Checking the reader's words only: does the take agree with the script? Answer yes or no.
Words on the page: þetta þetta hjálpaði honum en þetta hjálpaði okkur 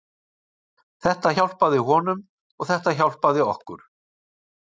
no